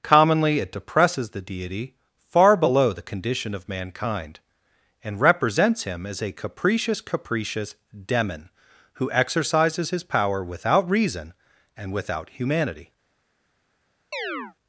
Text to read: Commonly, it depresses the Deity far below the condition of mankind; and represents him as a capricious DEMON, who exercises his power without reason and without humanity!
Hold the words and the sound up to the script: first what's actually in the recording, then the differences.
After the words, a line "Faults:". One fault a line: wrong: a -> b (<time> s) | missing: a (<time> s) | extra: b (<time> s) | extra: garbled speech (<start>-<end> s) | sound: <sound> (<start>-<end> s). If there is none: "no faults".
Commonly, it depresses the Deity far below the condition of mankind; and represents him as a capricious capricious DEMON, who exercises his power without reason and without humanity!
Faults:
extra: capricious (7.0 s)
sound: chirp (14.1-14.5 s)